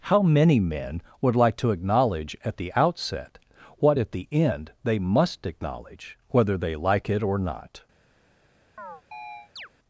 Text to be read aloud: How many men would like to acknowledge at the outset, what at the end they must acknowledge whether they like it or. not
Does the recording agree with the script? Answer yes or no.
yes